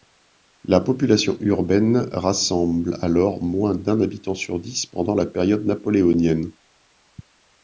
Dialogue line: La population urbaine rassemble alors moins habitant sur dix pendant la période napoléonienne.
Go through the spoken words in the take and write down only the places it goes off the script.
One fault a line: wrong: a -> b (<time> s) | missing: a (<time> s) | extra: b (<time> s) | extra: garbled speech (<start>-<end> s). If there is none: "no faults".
extra: d'un (3.8 s)